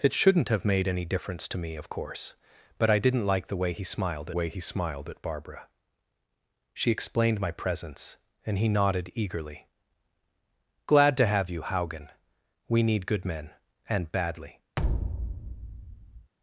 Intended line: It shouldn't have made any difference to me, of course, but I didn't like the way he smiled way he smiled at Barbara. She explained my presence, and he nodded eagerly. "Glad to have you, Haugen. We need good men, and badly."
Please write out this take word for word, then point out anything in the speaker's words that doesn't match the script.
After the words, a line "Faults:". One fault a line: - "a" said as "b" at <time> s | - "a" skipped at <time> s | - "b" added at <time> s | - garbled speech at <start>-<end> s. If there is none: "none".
It shouldn't have made any difference to me, of course, but I didn't like the way he smiled way he smiled at Barbara. She explained my presence, and he nodded eagerly. "Glad to have you, Haugen. We need good men, and badly."
Faults:
none